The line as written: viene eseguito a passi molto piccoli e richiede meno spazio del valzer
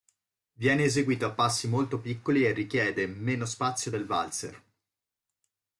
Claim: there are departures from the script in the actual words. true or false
false